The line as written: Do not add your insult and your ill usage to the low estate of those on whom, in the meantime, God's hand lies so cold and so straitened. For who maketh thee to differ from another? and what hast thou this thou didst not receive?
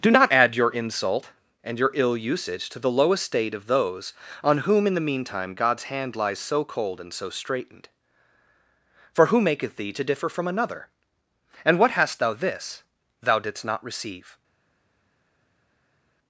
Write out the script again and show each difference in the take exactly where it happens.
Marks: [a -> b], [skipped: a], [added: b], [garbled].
Do not add your insult and your ill usage to the low estate of those on whom, in the meantime, God's hand lies so cold and so straitened. For who maketh thee to differ from another? and what hast thou this thou didst not receive?